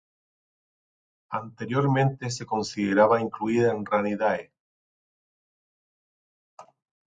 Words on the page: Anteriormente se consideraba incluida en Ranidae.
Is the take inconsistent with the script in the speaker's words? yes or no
no